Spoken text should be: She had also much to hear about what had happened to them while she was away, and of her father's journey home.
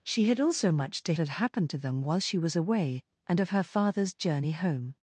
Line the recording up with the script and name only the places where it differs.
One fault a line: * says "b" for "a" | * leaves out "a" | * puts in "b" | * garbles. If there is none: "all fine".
* leaves out "hear about what"